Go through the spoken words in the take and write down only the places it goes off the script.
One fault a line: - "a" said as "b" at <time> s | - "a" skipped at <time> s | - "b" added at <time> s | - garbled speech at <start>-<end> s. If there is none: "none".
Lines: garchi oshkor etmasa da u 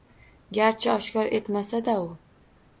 none